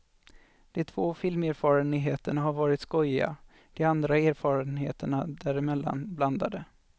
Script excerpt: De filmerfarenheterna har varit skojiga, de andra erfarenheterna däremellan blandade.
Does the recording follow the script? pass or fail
fail